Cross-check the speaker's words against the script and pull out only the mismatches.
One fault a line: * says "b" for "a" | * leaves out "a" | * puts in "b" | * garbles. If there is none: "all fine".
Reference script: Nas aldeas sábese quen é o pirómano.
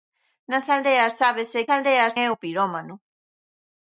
* says "aldeas" for "quen"